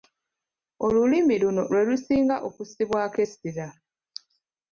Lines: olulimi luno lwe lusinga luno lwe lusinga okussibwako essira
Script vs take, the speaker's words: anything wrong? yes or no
yes